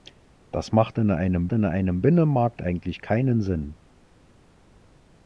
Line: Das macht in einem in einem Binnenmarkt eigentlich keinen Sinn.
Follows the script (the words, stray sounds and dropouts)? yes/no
yes